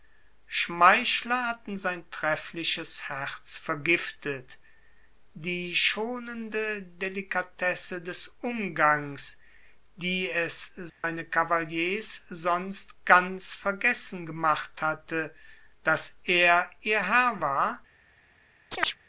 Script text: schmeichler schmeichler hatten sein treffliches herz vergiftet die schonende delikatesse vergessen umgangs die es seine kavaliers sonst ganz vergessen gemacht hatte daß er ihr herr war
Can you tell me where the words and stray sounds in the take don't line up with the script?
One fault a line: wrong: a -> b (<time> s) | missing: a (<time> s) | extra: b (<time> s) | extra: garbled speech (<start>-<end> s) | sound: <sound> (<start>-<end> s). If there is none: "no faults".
missing: schmeichler (1.4 s)
wrong: vergessen -> des (8.0 s)
sound: dropout (10.9-11.0 s)
sound: chirp (18.7-19.0 s)